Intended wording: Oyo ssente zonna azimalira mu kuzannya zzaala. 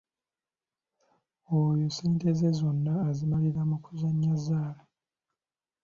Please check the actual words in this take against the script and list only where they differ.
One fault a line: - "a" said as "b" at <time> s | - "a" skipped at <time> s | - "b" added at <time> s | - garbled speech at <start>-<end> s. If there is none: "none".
- "ze" added at 2.4 s